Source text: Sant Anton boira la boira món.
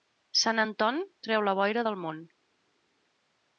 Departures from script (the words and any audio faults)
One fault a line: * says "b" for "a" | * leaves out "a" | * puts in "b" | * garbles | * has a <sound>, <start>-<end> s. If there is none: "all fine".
* says "treu" for "boira"
* puts in "del"